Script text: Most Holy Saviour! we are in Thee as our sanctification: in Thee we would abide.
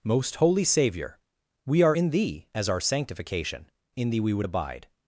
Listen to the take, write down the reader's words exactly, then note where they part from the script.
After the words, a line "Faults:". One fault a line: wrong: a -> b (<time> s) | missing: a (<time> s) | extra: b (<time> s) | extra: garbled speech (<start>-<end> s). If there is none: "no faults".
Most Holy Saviour! we are in Thee as our sanctification: in Thee we would abide.
Faults:
no faults